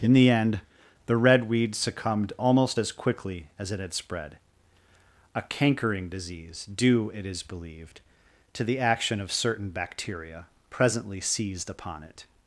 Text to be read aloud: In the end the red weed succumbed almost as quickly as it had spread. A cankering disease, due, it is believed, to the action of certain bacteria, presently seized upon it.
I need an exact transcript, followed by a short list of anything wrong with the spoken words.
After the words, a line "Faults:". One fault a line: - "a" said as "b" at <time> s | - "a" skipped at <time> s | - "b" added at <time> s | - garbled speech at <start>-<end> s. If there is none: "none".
In the end the red weed succumbed almost as quickly as it had spread. A cankering disease, due, it is believed, to the action of certain bacteria, presently seized upon it.
Faults:
none